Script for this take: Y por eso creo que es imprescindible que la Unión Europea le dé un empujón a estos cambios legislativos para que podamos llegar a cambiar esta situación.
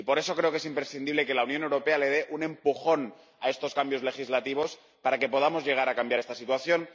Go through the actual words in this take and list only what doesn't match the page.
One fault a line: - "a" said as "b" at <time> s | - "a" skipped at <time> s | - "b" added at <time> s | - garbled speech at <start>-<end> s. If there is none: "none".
none